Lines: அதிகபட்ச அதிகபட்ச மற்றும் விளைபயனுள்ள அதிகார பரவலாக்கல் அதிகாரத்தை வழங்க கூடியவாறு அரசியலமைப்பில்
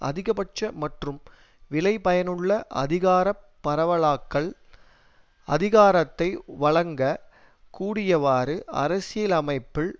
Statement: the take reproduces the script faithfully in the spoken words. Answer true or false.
false